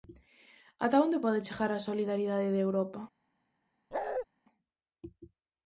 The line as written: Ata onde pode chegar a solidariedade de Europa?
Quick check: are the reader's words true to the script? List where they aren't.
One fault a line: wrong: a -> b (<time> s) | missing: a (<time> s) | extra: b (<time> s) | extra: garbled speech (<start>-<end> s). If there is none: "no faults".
no faults